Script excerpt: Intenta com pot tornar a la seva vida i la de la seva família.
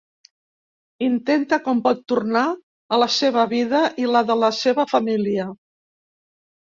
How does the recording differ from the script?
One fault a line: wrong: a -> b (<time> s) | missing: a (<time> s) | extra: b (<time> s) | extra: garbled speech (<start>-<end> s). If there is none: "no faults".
no faults